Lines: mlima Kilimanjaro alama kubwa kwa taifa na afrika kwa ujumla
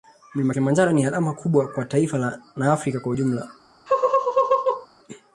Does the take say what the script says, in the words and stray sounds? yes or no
no